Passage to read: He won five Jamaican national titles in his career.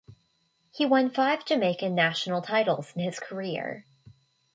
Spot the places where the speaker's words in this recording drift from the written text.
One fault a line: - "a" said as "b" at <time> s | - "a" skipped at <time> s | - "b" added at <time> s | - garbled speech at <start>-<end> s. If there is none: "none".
none